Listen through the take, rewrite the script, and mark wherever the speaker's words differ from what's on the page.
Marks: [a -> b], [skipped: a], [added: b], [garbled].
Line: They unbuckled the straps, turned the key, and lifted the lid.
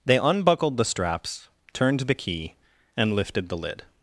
They unbuckled the straps, turned the key, and lifted the lid.